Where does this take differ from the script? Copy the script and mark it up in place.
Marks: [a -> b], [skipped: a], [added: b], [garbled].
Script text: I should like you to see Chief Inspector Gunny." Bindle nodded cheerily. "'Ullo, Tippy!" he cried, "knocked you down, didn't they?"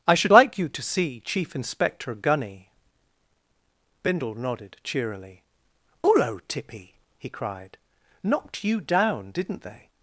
I should like you to see Chief Inspector Gunny." Bindle nodded cheerily. "'Ullo, Tippy!" he cried, "knocked you down, didn't they?"